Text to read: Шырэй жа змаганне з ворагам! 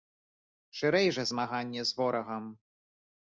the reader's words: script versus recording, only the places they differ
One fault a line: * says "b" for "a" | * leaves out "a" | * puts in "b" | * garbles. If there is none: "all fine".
all fine